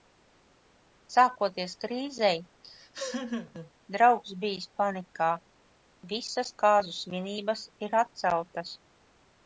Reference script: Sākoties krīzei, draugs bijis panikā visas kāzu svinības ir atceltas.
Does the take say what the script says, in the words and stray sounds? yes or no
no